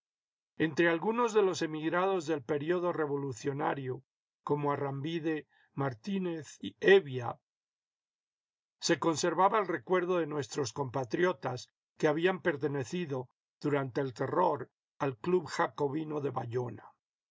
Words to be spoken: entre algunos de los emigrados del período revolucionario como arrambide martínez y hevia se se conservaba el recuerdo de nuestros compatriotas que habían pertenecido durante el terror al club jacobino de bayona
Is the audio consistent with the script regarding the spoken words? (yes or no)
no